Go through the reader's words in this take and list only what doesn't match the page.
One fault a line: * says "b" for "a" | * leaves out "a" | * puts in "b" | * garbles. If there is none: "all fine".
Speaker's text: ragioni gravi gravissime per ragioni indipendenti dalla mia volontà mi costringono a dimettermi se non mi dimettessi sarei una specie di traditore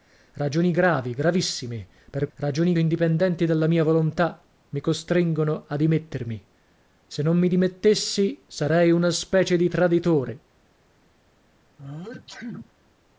all fine